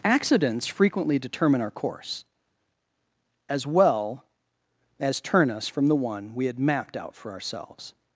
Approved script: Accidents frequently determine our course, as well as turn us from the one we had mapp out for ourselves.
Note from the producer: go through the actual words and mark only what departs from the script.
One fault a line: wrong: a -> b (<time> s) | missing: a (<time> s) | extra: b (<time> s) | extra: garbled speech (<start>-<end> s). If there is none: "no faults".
wrong: mapp -> mapped (6.6 s)